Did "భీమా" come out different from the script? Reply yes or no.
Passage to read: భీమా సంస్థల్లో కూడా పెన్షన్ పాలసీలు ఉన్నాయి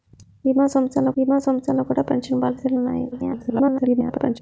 no